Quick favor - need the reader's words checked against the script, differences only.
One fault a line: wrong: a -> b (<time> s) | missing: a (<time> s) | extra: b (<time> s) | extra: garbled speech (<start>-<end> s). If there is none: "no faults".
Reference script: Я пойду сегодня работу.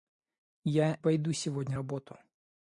no faults